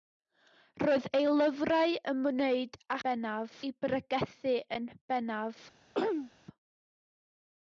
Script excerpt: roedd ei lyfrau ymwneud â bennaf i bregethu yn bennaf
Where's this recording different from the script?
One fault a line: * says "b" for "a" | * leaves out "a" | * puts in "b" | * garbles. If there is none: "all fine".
all fine